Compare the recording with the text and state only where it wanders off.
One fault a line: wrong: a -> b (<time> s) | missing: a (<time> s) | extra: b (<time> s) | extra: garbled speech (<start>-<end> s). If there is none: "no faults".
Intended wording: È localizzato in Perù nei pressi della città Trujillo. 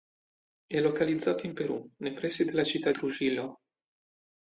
no faults